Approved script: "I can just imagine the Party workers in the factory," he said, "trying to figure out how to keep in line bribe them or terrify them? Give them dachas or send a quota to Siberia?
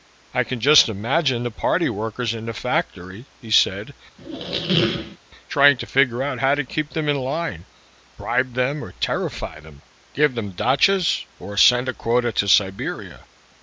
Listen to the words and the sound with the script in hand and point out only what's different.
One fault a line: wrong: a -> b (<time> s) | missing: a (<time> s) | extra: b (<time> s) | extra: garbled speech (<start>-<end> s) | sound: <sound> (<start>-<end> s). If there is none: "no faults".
sound: squeak (4.2-5.2 s)
extra: them (6.9 s)